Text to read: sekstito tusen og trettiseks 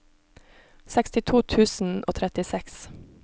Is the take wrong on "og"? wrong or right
right